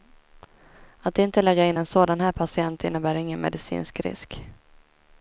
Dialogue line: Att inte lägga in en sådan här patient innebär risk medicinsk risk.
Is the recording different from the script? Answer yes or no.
yes